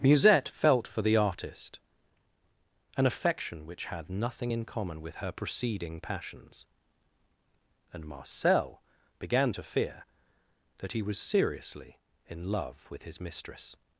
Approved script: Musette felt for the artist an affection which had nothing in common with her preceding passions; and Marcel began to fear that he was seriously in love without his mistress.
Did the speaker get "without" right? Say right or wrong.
wrong